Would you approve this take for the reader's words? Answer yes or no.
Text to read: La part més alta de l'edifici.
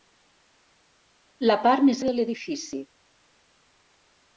no